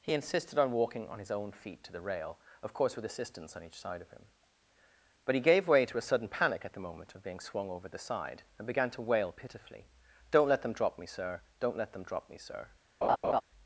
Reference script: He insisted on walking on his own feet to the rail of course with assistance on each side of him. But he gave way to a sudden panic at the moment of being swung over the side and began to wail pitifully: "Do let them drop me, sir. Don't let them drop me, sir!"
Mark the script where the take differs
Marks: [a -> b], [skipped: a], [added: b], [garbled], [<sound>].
He insisted on walking on his own feet to the rail of course with assistance on each side of him. But he gave way to a sudden panic at the moment of being swung over the side and began to wail pitifully: ["Do -> Don't] let them drop me, sir. Don't let them drop me, sir!" [laugh]